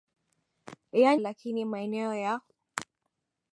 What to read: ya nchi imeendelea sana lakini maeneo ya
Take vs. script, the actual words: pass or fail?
fail